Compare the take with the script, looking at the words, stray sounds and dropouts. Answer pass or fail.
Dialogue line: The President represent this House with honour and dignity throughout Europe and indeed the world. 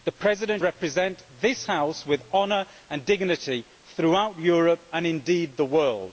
pass